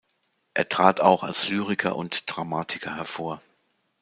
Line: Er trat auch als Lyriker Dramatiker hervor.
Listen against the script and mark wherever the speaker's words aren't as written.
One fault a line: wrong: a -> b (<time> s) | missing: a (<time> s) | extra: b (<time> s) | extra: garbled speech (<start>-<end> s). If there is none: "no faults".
extra: und (2.0 s)